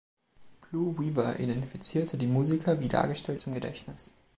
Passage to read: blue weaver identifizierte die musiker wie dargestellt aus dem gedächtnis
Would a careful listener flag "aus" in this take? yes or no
yes